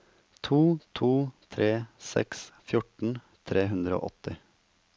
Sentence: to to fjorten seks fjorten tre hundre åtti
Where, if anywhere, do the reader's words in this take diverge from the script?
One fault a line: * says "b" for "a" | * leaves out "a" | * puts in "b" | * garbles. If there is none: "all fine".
* says "tre" for "fjorten"
* puts in "og"